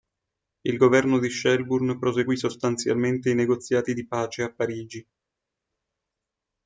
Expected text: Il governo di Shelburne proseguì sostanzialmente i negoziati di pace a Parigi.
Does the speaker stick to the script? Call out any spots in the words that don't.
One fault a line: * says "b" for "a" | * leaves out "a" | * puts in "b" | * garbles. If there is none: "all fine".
all fine